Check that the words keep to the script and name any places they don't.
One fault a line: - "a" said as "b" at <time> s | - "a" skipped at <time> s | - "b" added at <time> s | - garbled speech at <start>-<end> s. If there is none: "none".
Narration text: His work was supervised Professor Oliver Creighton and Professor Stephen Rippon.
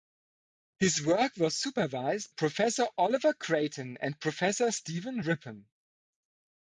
none